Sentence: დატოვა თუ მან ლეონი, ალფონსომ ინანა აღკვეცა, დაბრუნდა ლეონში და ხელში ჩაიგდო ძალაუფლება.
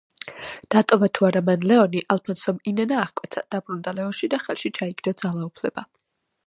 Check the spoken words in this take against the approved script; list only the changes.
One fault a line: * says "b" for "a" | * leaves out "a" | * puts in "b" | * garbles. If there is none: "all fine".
* puts in "არა"